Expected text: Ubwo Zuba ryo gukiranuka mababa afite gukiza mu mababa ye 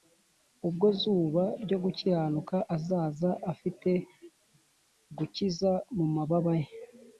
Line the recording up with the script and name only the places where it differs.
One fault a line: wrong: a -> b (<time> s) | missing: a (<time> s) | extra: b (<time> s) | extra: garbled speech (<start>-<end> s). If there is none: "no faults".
wrong: mababa -> azaza (2.7 s)